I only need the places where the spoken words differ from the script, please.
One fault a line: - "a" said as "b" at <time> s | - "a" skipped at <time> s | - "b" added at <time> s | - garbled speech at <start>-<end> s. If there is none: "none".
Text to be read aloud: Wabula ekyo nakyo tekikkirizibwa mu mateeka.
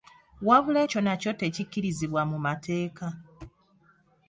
none